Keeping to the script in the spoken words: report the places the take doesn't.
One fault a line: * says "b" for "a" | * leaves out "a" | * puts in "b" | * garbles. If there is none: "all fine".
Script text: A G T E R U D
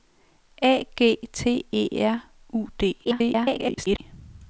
* garbles